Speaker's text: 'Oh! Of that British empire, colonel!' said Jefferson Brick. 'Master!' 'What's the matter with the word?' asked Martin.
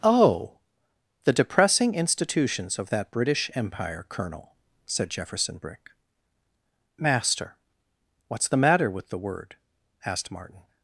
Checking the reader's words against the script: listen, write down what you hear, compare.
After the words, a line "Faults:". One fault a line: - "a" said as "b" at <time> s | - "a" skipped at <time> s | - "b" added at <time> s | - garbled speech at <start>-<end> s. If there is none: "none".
'Oh! The depressing institutions of that British empire, colonel!' said Jefferson Brick. 'Master!' 'What's the matter with the word?' asked Martin.
Faults:
- "The depressing institutions" added at 1.2 s